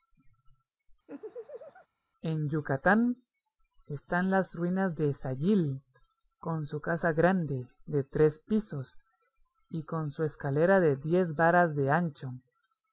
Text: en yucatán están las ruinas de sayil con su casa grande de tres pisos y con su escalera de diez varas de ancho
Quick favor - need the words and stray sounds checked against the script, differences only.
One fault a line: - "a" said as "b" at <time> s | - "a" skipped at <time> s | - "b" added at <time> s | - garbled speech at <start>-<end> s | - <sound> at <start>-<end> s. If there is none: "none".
- laugh at 1.1-1.9 s